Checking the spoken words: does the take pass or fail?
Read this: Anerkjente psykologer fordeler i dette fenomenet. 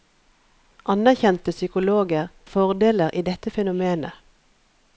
pass